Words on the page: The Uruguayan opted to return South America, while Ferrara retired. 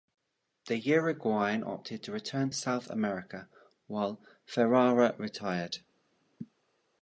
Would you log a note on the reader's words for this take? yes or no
no